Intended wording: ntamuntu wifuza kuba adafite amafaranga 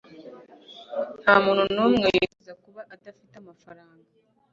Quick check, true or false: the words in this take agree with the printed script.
false